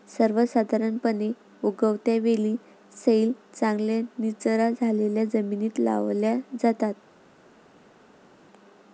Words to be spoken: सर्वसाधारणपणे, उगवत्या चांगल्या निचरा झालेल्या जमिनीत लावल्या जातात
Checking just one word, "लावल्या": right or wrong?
right